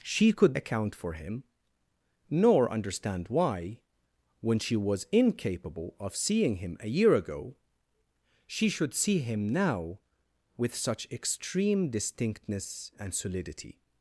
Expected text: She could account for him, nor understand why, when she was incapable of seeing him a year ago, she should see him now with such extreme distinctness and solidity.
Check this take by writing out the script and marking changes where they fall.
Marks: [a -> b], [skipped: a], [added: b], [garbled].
She could account for him, nor understand why, when she was incapable of seeing him a year ago, she should see him now with such extreme distinctness and solidity.